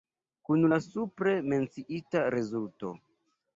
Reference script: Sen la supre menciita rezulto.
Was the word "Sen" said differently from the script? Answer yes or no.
yes